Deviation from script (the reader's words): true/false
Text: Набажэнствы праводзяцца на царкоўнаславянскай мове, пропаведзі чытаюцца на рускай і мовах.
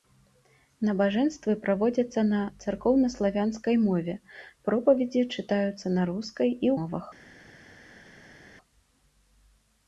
false